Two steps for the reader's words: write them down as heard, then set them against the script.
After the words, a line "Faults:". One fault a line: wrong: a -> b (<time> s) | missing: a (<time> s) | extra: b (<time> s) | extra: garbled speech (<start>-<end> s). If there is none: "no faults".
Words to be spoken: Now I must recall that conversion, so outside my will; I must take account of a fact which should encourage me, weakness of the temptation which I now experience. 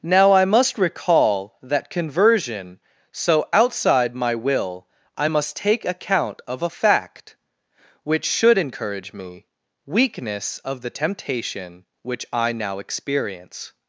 Now I must recall that conversion, so outside my will; I must take account of a fact which should encourage me, weakness of the temptation which I now experience.
Faults:
no faults